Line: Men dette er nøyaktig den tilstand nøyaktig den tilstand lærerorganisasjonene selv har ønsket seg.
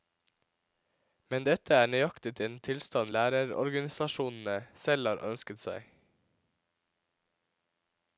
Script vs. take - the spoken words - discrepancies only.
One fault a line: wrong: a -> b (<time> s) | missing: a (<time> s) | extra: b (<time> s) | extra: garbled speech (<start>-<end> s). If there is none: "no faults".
missing: nøyaktig den tilstand (3.1 s)